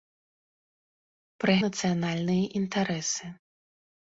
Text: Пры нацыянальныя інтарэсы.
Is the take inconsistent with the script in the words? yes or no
no